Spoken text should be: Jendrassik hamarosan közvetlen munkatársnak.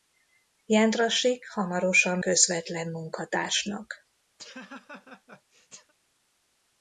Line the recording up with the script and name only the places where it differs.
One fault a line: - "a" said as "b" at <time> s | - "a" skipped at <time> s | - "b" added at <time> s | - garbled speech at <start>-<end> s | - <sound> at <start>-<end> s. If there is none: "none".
- laugh at 4.4-5.9 s